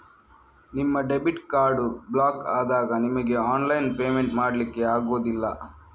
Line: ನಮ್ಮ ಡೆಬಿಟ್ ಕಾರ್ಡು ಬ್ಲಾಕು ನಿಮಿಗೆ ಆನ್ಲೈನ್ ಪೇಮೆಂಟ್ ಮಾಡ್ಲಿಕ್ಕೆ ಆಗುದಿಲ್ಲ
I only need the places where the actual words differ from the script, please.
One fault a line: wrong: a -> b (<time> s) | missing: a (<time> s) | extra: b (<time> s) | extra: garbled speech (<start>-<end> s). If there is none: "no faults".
wrong: ನಮ್ಮ -> ನಿಮ್ಮ (0.7 s)
extra: ಆದಾಗ (2.5 s)